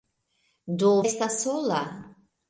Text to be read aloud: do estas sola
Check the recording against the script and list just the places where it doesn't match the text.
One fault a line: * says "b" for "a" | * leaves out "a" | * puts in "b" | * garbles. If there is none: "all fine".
all fine